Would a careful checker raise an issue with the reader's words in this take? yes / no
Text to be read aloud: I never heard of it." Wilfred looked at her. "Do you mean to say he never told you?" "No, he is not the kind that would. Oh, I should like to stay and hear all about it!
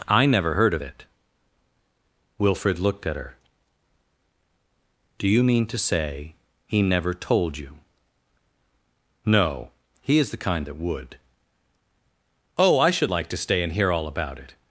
yes